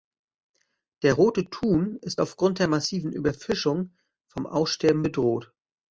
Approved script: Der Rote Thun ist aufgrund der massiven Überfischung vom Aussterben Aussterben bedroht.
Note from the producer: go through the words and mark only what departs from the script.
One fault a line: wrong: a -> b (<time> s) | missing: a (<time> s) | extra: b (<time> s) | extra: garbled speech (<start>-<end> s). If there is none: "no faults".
missing: Aussterben (5.0 s)